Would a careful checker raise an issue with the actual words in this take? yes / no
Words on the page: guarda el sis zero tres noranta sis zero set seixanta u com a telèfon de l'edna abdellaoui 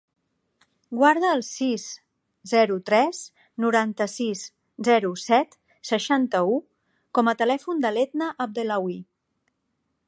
no